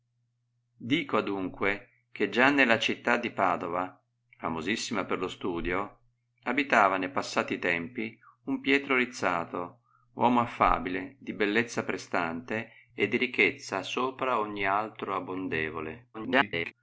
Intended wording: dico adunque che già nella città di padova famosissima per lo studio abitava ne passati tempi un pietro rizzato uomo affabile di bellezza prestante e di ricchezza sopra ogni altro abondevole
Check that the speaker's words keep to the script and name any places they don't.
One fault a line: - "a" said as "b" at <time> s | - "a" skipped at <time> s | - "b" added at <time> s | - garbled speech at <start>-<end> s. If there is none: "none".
- garbled speech at 16.1-16.7 s